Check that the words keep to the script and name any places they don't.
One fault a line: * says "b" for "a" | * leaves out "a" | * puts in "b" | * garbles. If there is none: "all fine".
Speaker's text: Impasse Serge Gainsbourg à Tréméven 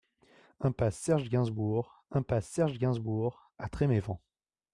* puts in "impasse Serge Gainsbourg"